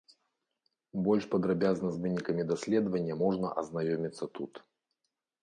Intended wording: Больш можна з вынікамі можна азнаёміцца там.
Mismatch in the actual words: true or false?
true